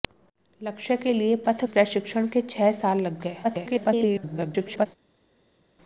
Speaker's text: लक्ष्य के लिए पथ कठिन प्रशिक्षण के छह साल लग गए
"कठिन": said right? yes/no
no